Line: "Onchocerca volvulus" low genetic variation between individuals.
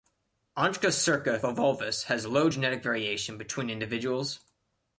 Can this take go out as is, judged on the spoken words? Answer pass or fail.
fail